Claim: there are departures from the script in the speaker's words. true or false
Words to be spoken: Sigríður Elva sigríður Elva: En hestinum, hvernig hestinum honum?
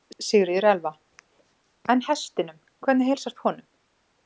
true